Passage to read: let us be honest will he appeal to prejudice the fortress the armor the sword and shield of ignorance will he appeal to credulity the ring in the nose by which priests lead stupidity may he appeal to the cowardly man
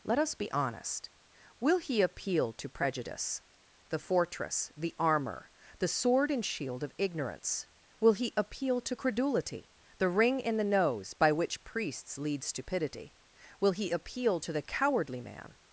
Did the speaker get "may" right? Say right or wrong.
wrong